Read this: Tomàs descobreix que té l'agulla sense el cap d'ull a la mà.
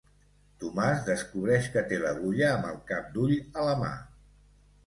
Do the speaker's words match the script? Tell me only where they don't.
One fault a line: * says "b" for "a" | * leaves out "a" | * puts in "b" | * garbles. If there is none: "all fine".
* says "amb" for "sense"